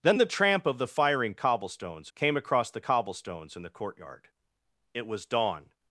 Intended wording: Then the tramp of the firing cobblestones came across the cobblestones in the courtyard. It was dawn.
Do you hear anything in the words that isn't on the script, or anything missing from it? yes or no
no